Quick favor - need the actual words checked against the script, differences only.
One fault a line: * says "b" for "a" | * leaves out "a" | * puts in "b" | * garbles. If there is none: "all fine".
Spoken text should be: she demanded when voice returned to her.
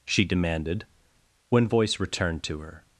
all fine